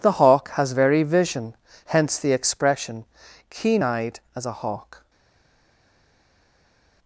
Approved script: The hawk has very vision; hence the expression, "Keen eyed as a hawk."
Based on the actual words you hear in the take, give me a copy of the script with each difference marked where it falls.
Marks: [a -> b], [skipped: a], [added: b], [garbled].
The hawk has very vision; hence the expression, "Keen eyed as a hawk."